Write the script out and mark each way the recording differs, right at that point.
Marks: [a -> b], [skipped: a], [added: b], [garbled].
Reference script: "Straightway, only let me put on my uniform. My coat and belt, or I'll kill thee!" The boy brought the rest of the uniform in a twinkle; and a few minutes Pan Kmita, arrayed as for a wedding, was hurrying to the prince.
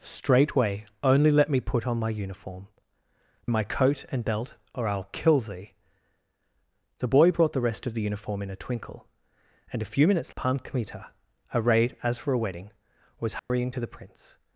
"Straightway, only let me put on my uniform. My coat and belt, or I'll kill thee!" The boy brought the rest of the uniform in a twinkle; and a few minutes Pan Kmita, arrayed as for a wedding, was hurrying to the prince.